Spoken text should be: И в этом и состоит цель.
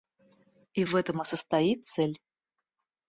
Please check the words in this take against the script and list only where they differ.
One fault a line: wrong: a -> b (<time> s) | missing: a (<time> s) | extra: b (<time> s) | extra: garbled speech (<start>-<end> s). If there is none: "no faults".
no faults